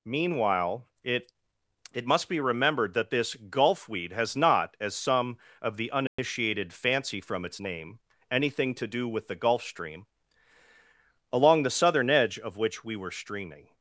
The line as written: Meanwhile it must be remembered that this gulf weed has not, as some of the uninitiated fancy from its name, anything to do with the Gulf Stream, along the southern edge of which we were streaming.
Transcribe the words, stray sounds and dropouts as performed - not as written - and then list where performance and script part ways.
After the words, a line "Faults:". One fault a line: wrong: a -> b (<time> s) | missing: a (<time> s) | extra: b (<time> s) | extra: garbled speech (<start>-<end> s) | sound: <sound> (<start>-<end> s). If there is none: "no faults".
Meanwhile it it must be remembered that this gulf weed has not, as some of the uninitiated fancy from its name, anything to do with the Gulf Stream, along the southern edge of which we were streaming.
Faults:
extra: it (1.9 s)
sound: dropout (6.1-6.2 s)